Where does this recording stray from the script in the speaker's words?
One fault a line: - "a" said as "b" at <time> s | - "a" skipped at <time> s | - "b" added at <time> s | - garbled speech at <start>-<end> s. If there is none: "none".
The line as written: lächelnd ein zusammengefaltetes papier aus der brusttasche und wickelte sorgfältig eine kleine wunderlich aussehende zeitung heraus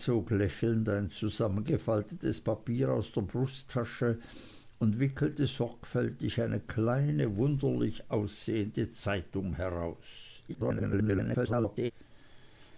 - garbled speech at 10.5-11.9 s